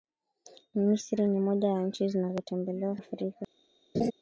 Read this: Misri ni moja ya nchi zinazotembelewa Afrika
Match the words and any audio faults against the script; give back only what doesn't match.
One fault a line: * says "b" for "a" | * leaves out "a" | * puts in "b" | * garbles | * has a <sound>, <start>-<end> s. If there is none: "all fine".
* has a laugh, 3.9-4.1 s